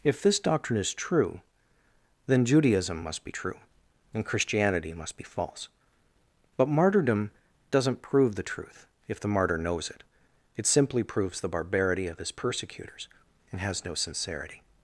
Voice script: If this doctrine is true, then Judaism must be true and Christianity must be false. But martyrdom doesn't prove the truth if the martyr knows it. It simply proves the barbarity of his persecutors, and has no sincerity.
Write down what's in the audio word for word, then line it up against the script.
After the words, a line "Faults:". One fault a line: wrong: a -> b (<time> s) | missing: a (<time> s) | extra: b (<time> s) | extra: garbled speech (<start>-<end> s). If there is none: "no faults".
If this doctrine is true, then Judaism must be true and Christianity must be false. But martyrdom doesn't prove the truth if the martyr knows it. It simply proves the barbarity of his persecutors, and has no sincerity.
Faults:
no faults